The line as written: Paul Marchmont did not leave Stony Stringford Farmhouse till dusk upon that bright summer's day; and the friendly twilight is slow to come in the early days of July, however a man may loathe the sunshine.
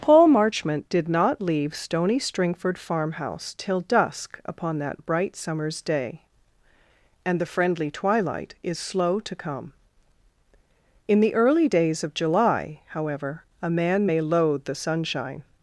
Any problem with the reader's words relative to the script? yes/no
no